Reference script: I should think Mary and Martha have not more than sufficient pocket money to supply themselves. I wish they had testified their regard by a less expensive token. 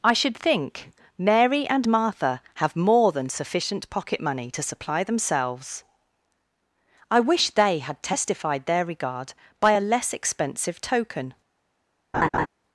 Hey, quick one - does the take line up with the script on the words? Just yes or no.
no